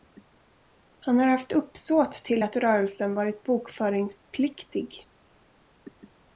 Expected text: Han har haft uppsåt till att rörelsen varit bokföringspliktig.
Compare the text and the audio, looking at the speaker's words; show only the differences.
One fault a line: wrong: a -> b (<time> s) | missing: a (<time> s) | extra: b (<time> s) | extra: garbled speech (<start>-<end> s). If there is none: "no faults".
no faults